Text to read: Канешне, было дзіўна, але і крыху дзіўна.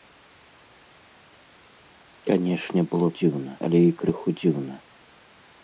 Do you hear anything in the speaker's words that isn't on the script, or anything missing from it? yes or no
no